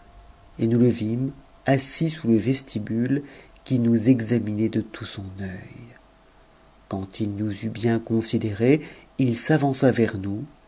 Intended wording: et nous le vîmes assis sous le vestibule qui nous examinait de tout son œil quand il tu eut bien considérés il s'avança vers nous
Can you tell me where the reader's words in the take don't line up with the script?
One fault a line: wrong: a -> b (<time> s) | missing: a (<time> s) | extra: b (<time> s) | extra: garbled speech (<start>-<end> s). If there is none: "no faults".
wrong: tu -> nous (7.3 s)